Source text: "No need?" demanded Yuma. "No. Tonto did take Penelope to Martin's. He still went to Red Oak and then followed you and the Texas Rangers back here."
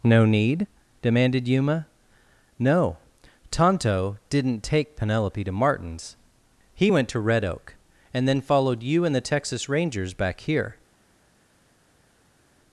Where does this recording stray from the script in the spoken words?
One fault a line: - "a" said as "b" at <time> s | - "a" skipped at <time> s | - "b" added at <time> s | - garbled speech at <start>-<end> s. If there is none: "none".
- "did" said as "didn't" at 4.3 s
- "still" skipped at 6.9 s